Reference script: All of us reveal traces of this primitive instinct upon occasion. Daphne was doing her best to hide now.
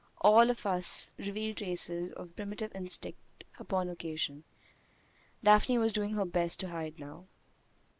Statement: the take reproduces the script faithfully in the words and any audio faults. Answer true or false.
false